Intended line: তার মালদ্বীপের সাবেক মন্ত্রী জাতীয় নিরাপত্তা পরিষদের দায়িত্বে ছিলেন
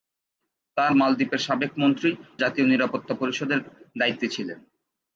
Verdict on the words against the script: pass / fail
pass